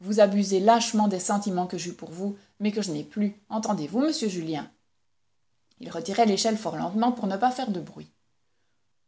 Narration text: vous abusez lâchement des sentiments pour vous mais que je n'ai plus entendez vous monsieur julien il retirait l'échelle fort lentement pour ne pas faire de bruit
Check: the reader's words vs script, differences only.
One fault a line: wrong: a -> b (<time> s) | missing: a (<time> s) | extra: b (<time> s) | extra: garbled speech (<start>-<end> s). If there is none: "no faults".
extra: que j'eus (1.7 s)